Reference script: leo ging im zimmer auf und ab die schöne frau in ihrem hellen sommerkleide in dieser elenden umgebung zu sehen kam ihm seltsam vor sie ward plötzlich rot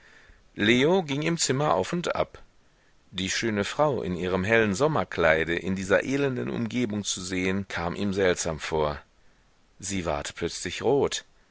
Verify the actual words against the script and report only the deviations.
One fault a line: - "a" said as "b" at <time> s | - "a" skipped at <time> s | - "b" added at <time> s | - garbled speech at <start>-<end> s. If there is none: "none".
none